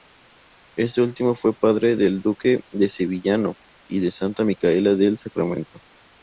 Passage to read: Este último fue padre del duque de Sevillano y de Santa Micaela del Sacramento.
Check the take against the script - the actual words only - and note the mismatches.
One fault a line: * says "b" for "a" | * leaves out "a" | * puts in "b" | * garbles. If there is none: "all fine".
all fine